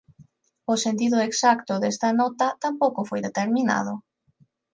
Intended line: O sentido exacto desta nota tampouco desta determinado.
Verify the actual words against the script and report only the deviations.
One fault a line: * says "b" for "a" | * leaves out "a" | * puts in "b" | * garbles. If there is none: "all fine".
* says "foi" for "desta"